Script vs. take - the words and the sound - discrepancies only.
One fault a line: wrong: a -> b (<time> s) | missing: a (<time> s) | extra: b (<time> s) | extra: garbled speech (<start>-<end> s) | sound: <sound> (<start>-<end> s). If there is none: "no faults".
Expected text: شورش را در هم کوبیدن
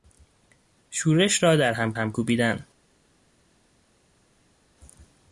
extra: هم (1.9 s)